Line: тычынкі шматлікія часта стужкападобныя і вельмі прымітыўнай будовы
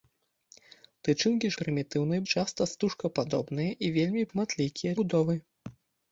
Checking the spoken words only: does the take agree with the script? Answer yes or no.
no